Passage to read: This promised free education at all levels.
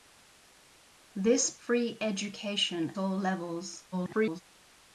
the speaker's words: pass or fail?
fail